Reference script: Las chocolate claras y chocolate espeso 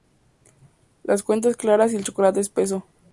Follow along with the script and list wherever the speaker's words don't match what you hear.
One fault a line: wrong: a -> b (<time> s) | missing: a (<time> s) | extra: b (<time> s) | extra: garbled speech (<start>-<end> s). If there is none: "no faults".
wrong: chocolate -> cuentas (1.2 s)
extra: el (1.9 s)